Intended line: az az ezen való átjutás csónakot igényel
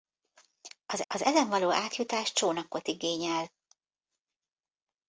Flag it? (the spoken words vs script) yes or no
no